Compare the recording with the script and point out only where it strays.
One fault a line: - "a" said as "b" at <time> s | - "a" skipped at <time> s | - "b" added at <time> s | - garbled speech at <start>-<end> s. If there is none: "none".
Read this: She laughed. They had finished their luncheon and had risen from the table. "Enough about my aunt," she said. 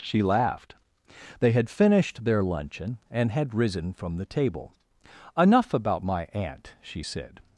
none